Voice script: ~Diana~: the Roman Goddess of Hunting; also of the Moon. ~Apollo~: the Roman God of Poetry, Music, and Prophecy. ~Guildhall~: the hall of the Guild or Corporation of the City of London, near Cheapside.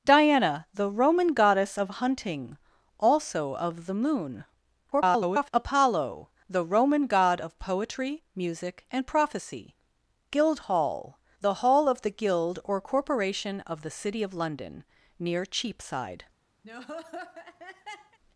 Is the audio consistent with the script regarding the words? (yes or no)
no